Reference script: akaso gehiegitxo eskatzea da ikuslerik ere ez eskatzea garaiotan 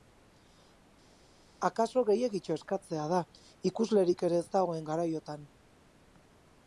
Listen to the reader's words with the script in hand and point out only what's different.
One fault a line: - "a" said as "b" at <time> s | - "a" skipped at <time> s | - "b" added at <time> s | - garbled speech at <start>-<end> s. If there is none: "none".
- "eskatzea" said as "dagoen" at 4.6 s